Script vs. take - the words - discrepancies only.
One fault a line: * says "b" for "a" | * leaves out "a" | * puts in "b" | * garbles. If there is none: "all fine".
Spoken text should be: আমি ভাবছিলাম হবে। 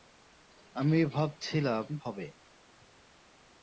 all fine